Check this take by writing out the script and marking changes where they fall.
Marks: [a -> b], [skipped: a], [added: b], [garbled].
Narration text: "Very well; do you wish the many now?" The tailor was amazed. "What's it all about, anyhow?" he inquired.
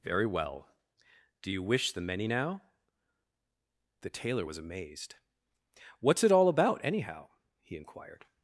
"Very well; do you wish the many now?" The tailor was amazed. "What's it all about, anyhow?" he inquired.